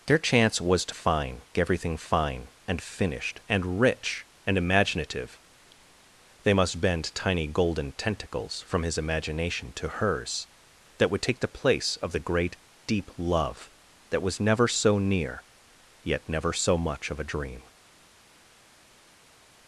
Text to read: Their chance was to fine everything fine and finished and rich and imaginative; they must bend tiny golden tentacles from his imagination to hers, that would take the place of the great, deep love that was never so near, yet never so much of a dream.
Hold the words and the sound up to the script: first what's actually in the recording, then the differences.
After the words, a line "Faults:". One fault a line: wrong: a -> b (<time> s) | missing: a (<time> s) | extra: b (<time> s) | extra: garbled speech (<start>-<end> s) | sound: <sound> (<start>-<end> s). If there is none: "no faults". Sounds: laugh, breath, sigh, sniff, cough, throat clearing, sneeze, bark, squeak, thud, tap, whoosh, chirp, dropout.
Their chance was to fine everything fine and finished and rich and imaginative; they must bend tiny golden tentacles from his imagination to hers, that would take the place of the great, deep love that was never so near, yet never so much of a dream.
Faults:
no faults